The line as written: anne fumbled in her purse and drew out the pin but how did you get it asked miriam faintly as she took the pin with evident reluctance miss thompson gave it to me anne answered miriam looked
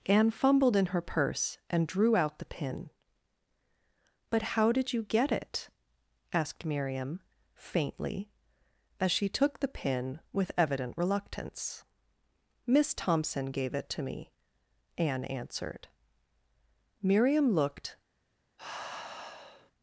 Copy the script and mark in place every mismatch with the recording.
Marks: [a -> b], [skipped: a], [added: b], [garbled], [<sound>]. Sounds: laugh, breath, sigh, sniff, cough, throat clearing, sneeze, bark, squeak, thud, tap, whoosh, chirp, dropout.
anne fumbled in her purse and drew out the pin but how did you get it asked miriam faintly as she took the pin with evident reluctance miss thompson gave it to me anne answered miriam looked [sigh]